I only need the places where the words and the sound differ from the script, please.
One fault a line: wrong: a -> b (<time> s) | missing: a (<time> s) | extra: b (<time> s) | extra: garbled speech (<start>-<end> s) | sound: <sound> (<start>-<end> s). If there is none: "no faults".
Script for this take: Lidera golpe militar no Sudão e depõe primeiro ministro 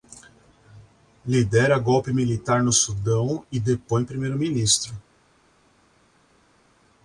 no faults